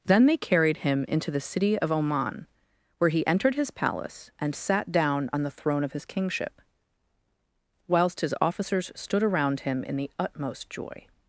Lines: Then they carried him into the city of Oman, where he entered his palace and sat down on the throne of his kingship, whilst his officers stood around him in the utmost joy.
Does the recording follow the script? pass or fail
pass